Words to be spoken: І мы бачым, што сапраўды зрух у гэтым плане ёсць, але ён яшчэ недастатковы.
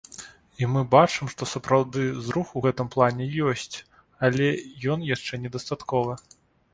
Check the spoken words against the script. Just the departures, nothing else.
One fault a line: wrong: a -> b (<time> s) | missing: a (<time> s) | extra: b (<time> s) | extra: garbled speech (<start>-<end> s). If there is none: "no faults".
no faults